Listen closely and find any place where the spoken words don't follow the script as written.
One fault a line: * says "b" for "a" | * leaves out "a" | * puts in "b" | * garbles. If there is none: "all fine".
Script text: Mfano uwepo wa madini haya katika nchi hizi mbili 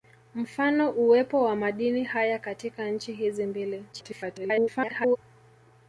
* garbles